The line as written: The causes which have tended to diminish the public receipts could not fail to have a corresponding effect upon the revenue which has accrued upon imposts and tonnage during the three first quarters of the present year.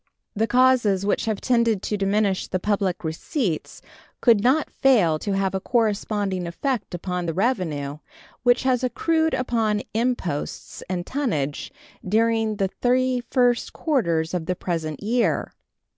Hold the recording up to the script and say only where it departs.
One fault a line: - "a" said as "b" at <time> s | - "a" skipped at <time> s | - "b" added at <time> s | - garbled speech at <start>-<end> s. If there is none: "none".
none